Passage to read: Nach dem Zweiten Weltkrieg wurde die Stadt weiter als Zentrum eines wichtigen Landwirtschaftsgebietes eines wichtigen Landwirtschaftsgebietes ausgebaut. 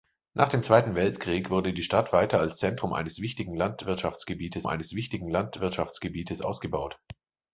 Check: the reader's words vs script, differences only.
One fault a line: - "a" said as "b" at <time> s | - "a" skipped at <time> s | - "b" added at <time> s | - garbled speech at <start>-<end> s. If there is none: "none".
none